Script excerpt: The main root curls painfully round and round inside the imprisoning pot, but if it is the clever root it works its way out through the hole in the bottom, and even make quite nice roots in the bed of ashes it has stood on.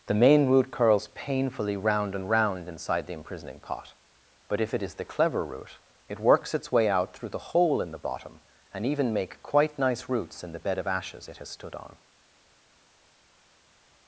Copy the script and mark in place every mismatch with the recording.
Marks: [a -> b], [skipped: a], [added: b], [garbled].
The main root curls painfully round and round inside the imprisoning pot, but if it is the clever root it works its way out through the hole in the bottom, and even make quite nice roots in the bed of ashes it has stood on.